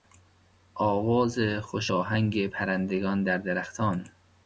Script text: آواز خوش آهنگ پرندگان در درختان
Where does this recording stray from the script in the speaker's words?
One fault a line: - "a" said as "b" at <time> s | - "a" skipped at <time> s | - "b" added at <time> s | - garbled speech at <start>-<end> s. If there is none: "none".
none